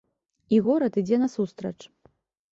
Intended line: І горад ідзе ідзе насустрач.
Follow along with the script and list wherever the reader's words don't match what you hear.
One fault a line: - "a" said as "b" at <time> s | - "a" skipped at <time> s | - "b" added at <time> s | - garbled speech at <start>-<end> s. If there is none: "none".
- "ідзе" skipped at 1.2 s